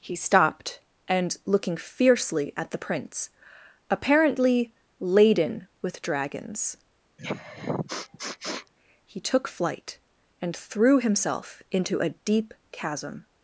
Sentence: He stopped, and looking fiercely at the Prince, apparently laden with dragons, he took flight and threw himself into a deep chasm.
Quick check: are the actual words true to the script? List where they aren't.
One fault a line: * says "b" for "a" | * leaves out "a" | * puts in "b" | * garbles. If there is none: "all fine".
all fine